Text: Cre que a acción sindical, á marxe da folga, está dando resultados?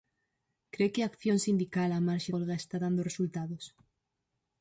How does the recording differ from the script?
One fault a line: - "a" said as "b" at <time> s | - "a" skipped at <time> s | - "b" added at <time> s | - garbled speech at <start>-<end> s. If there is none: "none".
- "da" skipped at 2.3 s